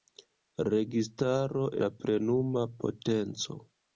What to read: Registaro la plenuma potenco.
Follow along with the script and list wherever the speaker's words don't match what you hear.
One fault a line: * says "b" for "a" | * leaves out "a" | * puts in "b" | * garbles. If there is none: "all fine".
all fine